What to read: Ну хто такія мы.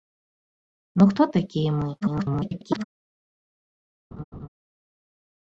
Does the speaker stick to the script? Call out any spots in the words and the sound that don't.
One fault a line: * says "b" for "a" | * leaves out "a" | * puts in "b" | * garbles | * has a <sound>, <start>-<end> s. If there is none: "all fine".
* garbles
* has a laugh, 4.1-4.5 s